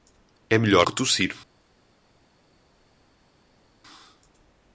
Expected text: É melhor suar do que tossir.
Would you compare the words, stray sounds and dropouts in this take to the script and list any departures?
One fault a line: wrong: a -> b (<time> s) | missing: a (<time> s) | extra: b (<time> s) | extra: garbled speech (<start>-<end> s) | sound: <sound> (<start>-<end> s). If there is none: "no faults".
missing: suar do (0.9 s)